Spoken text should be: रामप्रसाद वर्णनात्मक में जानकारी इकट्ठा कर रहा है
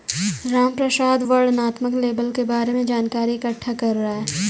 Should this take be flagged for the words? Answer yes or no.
yes